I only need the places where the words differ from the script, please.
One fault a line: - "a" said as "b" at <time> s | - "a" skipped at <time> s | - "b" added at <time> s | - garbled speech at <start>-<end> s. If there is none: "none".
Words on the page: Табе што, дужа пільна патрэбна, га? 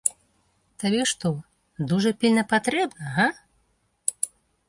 none